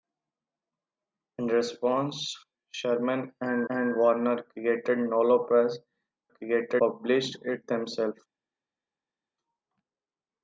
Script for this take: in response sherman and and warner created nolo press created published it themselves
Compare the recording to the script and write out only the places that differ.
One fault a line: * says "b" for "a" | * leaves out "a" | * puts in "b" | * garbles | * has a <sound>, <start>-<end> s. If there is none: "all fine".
all fine